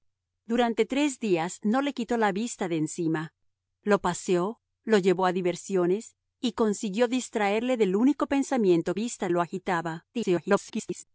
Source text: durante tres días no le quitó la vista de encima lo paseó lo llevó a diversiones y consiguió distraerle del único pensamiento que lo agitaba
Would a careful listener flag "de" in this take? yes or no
no